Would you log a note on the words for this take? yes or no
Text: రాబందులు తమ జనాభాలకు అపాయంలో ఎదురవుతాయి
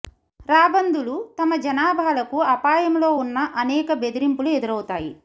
yes